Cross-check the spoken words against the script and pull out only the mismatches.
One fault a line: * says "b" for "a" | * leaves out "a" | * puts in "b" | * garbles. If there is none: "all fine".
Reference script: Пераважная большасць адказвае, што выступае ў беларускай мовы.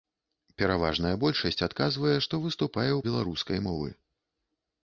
all fine